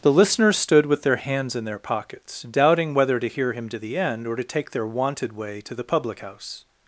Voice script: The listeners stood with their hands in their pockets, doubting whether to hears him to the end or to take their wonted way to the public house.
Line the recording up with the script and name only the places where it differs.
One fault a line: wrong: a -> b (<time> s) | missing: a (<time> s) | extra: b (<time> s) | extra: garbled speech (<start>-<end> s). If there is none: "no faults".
wrong: hears -> hear (3.3 s)